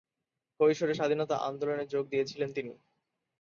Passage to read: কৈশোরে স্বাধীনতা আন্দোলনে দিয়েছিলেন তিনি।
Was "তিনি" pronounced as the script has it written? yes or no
yes